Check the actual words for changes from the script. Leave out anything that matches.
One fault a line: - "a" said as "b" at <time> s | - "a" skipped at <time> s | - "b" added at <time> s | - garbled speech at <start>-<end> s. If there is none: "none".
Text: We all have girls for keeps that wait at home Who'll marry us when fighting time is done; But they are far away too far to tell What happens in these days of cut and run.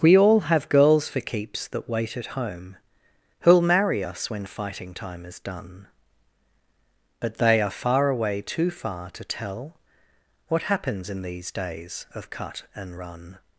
none